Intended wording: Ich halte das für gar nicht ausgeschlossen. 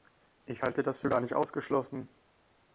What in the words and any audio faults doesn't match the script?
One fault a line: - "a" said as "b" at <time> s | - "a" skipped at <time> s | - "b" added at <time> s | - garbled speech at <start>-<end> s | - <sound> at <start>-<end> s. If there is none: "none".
none